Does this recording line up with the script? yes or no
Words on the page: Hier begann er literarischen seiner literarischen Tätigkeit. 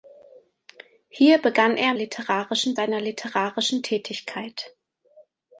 yes